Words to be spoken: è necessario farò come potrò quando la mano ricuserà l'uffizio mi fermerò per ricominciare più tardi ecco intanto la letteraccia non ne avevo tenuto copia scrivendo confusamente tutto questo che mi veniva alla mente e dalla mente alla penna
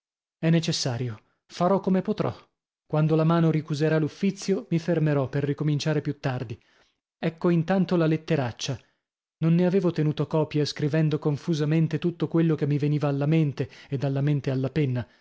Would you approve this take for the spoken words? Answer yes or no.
no